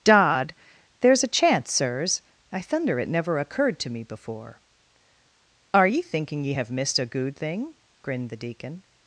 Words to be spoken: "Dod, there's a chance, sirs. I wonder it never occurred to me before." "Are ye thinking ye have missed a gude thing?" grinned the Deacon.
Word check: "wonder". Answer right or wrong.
wrong